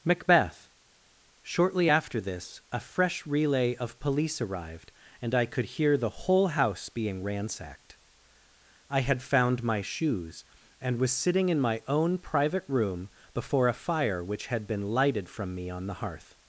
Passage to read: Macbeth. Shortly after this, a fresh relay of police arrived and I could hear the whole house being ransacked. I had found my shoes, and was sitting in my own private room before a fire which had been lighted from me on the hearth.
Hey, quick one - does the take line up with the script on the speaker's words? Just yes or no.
yes